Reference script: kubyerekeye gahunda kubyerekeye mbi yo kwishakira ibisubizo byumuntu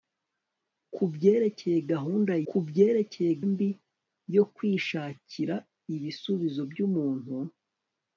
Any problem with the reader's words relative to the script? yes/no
no